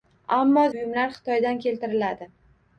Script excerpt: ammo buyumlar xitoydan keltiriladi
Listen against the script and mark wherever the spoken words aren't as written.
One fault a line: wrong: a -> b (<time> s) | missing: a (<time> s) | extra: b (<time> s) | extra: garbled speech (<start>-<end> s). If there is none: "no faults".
no faults